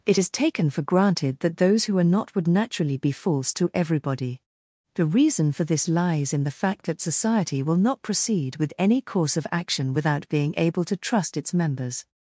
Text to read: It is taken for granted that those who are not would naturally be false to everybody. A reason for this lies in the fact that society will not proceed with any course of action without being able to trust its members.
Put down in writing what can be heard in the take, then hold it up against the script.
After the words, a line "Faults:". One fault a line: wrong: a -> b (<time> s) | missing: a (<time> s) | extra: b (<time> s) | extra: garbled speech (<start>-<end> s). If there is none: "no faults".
It is taken for granted that those who are not would naturally be false to everybody. The reason for this lies in the fact that society will not proceed with any course of action without being able to trust its members.
Faults:
wrong: A -> The (4.9 s)